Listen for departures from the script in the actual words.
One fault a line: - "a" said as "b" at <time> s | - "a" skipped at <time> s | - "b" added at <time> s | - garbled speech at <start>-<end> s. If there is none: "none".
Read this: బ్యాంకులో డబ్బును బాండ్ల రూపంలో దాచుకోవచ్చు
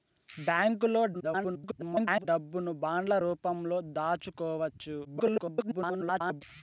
- garbled speech at 1.1-2.3 s
- garbled speech at 5.0-6.4 s